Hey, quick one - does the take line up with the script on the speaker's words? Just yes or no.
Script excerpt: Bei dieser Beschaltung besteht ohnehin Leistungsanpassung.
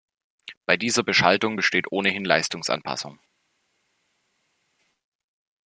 yes